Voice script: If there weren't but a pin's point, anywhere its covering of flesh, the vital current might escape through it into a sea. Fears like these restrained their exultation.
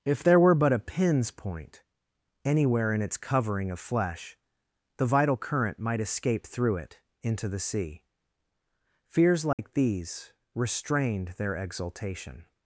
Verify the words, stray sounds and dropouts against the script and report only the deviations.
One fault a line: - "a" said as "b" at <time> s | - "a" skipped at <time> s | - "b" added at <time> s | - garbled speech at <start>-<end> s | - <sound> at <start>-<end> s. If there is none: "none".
- "weren't" said as "were" at 0.4 s
- "in" added at 2.9 s
- "a" said as "the" at 7.5 s
- dropout at 9.5-9.6 s